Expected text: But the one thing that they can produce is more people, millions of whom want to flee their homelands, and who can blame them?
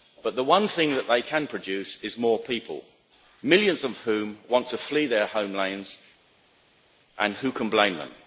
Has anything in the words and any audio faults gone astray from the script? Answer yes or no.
no